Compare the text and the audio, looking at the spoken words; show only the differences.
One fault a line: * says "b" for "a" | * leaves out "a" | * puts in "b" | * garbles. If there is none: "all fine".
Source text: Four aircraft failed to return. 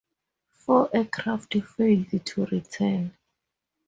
all fine